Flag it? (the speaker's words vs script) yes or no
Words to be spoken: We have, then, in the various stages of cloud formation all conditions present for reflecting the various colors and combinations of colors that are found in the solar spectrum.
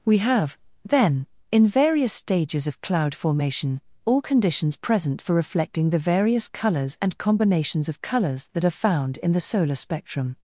yes